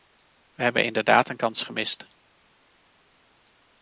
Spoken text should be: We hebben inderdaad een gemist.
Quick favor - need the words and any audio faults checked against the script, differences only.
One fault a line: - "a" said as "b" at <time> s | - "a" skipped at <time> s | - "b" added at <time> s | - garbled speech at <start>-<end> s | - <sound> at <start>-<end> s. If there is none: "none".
- "kans" added at 1.3 s